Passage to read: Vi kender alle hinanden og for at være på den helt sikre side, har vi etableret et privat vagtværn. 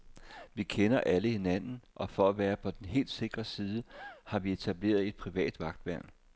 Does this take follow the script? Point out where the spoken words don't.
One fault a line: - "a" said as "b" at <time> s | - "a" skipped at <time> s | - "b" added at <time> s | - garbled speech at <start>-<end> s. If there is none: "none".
none